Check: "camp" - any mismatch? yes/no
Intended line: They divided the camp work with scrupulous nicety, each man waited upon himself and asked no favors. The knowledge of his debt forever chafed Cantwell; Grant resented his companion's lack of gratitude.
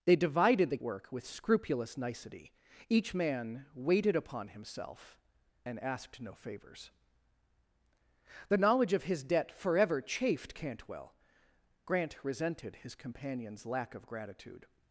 yes